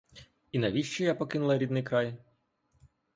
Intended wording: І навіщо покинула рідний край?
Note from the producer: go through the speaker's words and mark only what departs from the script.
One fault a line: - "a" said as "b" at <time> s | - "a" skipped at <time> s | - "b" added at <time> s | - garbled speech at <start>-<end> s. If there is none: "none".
- "я" added at 1.0 s